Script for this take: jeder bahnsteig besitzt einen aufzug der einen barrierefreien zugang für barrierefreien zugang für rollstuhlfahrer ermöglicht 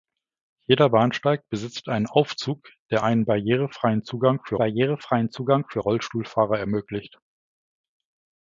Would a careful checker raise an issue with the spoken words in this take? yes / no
no